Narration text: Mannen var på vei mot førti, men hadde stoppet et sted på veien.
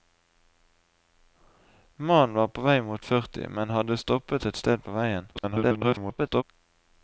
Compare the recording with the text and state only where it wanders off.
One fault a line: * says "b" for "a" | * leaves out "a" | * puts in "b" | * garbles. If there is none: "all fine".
* garbles